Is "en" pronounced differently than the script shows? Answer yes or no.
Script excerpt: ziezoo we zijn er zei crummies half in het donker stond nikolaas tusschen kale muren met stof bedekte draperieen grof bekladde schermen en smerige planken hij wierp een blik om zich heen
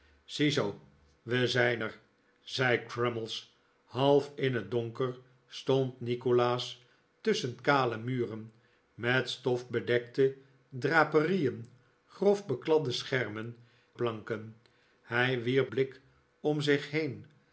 yes